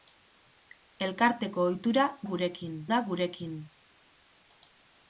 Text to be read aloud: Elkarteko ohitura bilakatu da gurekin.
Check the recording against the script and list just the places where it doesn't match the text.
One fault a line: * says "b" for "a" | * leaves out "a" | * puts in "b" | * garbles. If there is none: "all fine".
* says "gurekin" for "bilakatu"